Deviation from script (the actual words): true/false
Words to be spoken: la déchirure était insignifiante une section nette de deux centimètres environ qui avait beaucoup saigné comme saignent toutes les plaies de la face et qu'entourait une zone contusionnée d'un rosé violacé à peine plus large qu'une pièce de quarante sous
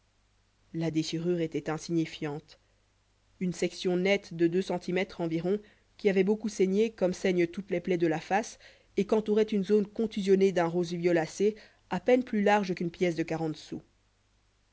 false